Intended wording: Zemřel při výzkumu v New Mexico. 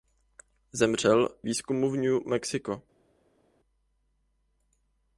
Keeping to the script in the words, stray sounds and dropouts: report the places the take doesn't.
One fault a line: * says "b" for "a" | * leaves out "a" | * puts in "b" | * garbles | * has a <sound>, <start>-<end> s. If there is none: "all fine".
* leaves out "při"